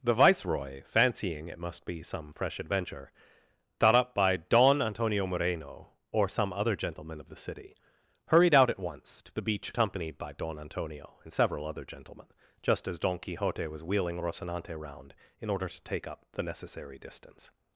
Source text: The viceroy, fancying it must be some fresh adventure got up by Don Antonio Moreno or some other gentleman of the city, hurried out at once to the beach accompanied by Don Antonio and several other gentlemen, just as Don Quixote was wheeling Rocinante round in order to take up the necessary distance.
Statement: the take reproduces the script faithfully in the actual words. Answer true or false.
false